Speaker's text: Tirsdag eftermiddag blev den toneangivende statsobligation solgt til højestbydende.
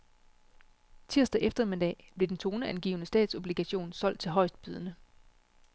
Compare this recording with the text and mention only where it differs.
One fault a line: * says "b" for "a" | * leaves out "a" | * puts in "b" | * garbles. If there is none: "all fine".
all fine